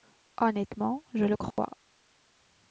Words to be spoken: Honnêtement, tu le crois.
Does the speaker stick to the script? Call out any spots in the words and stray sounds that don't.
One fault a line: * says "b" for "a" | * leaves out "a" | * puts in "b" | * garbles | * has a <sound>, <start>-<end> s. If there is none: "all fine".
* says "je" for "tu"
* has a dropout, 1.5-1.6 s